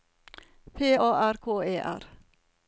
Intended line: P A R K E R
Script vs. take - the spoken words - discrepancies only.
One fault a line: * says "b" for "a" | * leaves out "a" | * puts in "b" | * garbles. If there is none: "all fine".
all fine